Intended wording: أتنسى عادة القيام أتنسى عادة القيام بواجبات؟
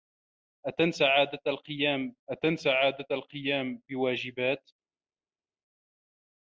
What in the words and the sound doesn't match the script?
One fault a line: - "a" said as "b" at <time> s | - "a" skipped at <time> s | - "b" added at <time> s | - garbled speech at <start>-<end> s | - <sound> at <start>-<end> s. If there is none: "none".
none